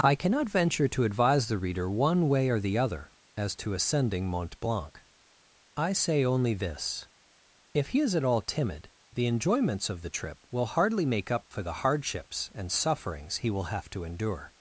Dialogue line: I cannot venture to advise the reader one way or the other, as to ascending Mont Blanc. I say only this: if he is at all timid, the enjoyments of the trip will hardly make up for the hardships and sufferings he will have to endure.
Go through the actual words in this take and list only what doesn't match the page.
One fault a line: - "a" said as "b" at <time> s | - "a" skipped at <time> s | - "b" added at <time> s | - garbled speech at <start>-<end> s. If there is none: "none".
none